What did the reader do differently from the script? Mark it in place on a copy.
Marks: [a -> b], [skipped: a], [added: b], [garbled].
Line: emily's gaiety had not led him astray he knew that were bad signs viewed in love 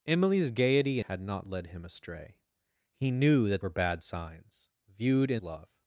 emily's gaiety had not led him astray he knew that were bad signs viewed in love